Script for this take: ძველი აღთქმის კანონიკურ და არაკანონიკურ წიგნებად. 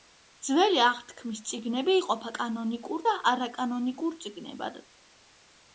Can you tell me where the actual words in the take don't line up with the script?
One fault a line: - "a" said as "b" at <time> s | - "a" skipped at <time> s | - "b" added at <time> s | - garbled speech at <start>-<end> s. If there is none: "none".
- "წიგნები იყოფა" added at 1.5 s